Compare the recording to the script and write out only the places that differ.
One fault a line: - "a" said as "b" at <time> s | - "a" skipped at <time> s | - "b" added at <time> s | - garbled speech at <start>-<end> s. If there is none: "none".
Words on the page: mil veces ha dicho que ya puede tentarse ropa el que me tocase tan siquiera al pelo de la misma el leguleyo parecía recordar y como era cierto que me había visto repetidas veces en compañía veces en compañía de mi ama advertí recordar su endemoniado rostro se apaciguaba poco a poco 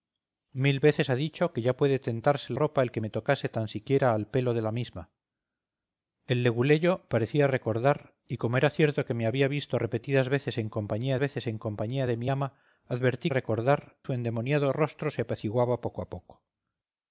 none